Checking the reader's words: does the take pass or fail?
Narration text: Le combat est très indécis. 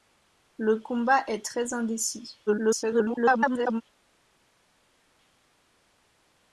fail